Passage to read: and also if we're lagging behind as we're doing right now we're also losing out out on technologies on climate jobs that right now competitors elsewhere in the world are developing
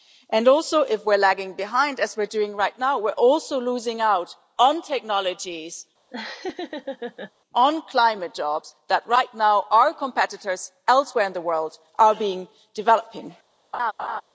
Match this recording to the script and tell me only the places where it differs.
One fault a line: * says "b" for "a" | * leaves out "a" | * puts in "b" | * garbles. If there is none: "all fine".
* leaves out "out"
* puts in "our"